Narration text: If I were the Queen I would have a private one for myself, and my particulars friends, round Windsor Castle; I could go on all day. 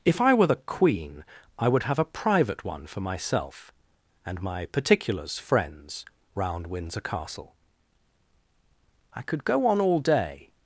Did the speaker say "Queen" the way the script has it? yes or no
yes